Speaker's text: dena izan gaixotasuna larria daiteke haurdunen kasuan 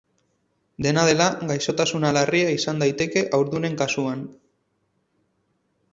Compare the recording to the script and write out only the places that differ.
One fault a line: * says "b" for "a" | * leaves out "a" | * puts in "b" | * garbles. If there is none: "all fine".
* says "dela" for "izan"
* puts in "izan"